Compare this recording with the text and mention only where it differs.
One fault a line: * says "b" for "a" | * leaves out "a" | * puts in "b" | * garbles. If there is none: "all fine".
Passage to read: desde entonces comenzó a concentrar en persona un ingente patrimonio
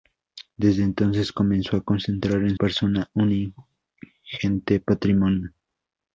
all fine